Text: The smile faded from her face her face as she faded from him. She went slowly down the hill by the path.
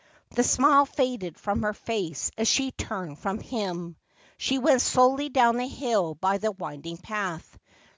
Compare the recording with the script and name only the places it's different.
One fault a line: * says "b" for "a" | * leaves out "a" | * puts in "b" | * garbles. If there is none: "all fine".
* leaves out "her face"
* says "turned" for "faded"
* puts in "winding"